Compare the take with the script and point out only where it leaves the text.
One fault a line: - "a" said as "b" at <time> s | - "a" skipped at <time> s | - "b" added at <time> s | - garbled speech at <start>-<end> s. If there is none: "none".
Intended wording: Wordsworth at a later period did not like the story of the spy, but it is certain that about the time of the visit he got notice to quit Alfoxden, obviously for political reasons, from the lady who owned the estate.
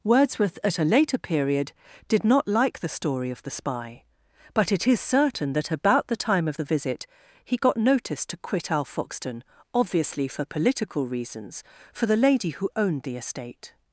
- "from" said as "for" at 11.9 s